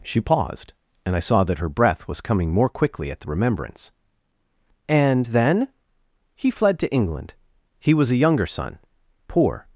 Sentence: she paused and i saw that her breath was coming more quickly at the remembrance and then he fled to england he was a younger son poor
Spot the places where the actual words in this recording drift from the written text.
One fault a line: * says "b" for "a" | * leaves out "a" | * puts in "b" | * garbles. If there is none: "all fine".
all fine